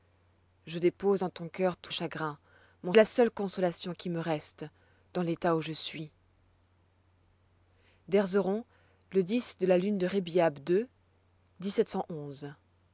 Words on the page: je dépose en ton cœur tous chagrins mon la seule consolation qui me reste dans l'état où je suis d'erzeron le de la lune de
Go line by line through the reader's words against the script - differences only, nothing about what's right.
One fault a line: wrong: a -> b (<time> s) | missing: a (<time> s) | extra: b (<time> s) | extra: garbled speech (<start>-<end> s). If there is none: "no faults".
no faults